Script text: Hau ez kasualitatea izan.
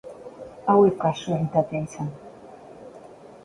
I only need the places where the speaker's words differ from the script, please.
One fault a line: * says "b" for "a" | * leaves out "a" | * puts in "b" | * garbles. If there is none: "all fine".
all fine